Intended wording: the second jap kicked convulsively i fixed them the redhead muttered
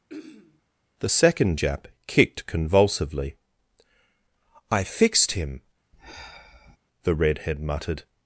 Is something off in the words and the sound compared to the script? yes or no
yes